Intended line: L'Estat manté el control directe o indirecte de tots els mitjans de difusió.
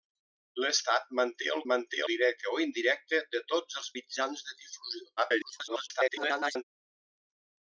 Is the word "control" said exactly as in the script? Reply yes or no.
no